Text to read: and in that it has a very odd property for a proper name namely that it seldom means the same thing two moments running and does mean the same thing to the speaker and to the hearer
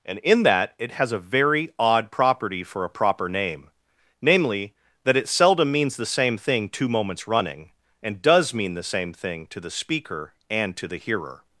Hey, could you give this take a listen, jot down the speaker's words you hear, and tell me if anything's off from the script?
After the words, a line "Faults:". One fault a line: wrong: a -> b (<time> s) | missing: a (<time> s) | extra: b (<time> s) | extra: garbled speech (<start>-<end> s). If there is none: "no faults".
and in that it has a very odd property for a proper name namely that it seldom means the same thing two moments running and does mean the same thing to the speaker and to the hearer
Faults:
no faults